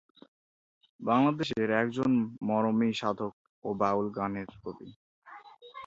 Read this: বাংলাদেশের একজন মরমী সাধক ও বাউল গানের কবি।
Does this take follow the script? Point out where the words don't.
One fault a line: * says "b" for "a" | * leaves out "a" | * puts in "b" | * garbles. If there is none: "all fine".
all fine